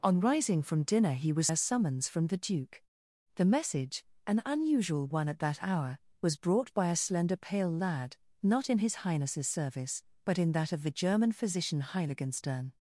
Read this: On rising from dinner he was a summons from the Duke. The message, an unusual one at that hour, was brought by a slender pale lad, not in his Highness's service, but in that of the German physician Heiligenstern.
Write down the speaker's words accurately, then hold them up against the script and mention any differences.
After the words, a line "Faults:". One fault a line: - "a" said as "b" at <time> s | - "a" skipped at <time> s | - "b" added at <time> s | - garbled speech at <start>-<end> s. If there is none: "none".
On rising from dinner he was a summons from the Duke. The message, an unusual one at that hour, was brought by a slender pale lad, not in his Highness's service, but in that of the German physician Heiligenstern.
Faults:
none